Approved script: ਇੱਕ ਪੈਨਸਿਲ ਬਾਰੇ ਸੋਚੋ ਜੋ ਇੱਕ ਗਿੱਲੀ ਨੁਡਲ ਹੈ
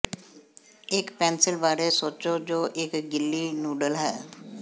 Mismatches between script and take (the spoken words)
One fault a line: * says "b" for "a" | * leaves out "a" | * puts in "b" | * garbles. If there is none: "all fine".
all fine